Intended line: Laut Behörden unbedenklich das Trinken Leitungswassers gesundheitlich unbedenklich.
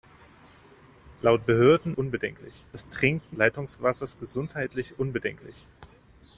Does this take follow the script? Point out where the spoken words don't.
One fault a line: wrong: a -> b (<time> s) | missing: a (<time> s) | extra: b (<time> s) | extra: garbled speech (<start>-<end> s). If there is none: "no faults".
no faults